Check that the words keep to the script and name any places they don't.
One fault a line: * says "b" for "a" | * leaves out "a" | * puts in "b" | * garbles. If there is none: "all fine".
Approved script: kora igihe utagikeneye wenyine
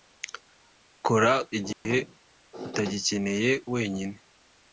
all fine